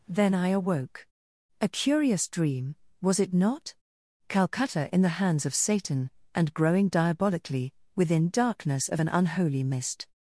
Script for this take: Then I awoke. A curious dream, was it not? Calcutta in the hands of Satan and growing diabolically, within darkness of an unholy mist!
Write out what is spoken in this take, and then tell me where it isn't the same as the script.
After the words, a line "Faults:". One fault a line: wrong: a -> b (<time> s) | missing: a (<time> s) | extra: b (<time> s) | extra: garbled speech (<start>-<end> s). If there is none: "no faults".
Then I awoke. A curious dream, was it not? Calcutta in the hands of Satan and growing diabolically, within darkness of an unholy mist!
Faults:
no faults